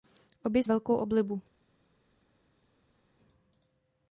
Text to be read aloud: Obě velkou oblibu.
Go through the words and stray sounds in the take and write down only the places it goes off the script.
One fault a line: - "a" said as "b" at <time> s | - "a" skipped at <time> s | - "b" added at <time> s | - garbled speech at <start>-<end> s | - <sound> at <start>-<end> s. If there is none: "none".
none